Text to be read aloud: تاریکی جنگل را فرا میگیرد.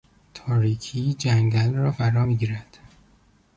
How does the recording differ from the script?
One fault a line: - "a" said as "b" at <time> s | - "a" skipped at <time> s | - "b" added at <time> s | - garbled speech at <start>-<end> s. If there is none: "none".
none